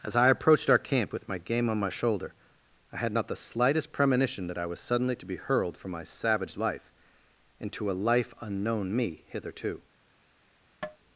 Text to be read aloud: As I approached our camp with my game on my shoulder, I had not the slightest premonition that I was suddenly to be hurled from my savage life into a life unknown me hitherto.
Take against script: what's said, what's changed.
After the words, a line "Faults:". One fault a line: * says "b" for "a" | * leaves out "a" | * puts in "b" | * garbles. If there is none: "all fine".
As I approached our camp with my game on my shoulder, I had not the slightest premonition that I was suddenly to be hurled from my savage life into a life unknown me hitherto.
Faults:
all fine